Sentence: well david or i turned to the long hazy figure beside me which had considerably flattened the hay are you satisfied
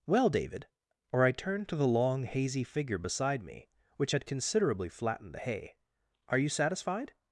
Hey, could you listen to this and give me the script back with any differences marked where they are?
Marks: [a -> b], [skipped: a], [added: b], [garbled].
well david or i turned to the long hazy figure beside me which had considerably flattened the hay are you satisfied